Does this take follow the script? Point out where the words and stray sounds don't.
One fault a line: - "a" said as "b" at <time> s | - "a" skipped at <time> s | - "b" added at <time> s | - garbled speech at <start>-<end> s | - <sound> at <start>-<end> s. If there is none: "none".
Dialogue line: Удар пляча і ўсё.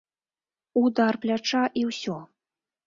none